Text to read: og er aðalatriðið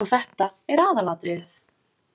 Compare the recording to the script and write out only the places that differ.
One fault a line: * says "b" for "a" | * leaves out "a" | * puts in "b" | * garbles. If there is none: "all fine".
* puts in "þetta"